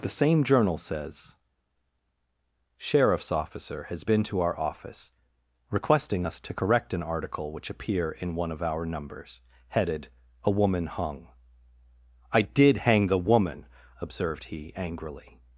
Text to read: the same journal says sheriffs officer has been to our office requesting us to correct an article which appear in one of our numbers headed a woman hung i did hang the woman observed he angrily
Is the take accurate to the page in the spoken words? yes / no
yes